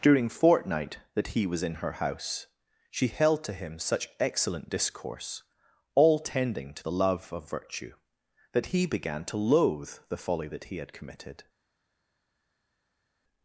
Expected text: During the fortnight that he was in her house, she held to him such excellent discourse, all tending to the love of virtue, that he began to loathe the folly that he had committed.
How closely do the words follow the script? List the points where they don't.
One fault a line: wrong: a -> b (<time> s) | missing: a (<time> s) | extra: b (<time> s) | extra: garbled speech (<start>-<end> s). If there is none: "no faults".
missing: the (0.3 s)